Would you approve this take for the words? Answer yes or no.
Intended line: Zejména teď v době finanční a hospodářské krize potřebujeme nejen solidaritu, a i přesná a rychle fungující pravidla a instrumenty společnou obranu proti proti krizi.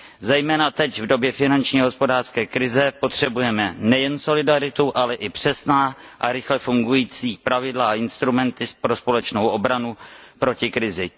no